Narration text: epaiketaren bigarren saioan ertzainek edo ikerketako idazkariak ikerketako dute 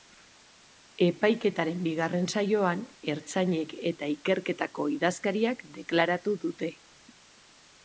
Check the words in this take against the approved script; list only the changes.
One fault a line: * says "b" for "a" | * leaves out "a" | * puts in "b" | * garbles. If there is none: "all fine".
* says "eta" for "edo"
* says "deklaratu" for "ikerketako"